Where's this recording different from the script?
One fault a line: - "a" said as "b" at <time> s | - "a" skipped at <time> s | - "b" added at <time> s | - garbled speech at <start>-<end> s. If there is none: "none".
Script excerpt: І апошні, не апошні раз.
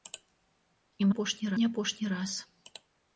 none